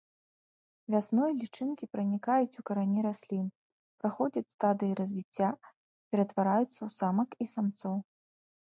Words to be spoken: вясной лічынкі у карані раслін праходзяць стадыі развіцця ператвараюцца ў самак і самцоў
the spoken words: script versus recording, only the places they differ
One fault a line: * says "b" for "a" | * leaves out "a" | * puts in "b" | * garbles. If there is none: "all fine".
* puts in "пранікаюць"